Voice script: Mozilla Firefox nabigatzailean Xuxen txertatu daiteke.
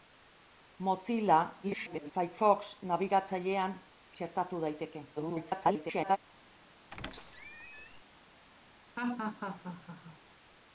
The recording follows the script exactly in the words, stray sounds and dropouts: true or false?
false